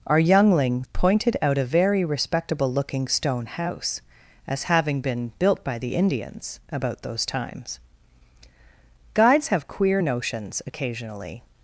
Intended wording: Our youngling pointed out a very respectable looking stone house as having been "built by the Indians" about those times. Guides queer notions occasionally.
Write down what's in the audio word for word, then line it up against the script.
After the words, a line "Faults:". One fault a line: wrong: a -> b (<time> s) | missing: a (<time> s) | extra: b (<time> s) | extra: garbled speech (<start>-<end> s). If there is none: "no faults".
Our youngling pointed out a very respectable looking stone house as having been "built by the Indians" about those times. Guides have queer notions occasionally.
Faults:
extra: have (9.5 s)